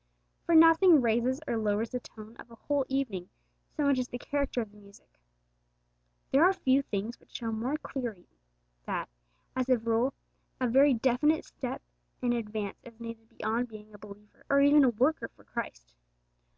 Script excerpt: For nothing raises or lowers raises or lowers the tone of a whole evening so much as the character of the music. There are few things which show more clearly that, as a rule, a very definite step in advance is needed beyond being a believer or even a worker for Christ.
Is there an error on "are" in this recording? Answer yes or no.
no